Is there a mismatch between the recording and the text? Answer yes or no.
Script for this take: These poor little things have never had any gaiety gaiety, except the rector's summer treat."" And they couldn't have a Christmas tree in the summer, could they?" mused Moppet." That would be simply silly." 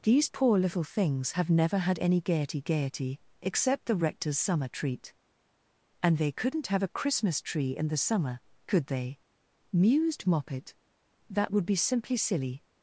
no